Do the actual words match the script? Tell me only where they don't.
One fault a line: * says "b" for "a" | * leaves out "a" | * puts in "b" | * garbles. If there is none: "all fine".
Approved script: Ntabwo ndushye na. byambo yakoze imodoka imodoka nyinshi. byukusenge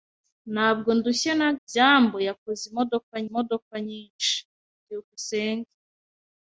all fine